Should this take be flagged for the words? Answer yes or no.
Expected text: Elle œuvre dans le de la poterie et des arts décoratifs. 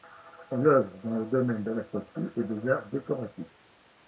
yes